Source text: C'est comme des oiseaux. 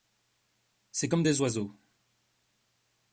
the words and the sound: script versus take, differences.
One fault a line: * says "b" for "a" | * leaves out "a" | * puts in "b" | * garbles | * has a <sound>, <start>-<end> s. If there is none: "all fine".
all fine